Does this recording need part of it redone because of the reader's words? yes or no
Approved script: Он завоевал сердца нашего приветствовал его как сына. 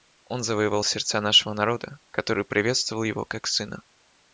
yes